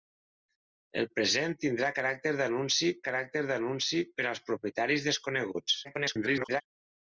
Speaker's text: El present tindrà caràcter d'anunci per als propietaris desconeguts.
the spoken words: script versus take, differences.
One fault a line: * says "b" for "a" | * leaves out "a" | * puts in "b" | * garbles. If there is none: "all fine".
* puts in "caràcter d'anunci"
* garbles